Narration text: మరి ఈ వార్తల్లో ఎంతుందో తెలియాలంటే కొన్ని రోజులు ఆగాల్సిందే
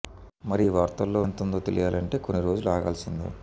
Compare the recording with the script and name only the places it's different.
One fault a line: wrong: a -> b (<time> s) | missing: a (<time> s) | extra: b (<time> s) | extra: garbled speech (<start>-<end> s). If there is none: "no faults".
no faults